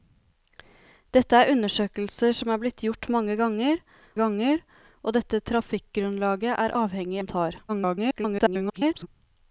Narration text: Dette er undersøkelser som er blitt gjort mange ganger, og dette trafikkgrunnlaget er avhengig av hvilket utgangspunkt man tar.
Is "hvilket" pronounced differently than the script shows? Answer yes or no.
yes